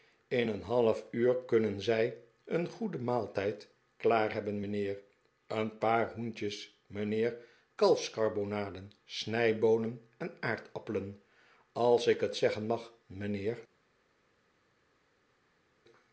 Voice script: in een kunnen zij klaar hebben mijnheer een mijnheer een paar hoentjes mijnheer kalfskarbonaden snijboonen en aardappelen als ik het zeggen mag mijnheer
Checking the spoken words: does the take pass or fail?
fail